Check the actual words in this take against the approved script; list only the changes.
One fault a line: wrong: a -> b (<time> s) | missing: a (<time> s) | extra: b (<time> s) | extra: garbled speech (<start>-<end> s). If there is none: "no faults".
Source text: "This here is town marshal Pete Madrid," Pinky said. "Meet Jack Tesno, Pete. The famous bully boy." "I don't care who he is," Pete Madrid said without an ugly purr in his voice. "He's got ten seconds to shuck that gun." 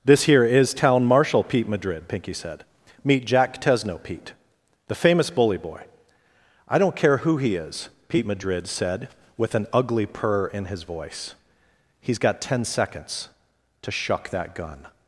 wrong: without -> with (9.4 s)